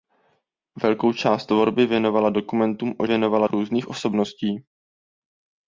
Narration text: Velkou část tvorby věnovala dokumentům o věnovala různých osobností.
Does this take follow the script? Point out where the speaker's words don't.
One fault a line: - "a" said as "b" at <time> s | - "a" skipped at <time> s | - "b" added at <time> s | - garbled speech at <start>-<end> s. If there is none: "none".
none